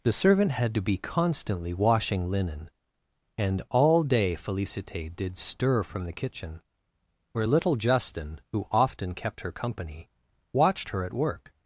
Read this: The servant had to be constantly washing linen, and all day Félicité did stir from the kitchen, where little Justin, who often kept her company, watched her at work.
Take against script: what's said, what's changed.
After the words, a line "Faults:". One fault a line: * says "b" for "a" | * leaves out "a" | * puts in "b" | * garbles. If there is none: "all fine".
The servant had to be constantly washing linen, and all day Félicité did stir from the kitchen, where little Justin, who often kept her company, watched her at work.
Faults:
all fine